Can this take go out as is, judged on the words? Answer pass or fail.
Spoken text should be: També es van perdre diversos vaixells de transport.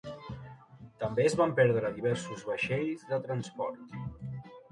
pass